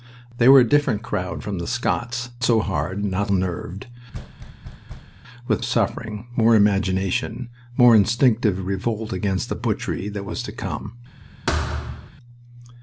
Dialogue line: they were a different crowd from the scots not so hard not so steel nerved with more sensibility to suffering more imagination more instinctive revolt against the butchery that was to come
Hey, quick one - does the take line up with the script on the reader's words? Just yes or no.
no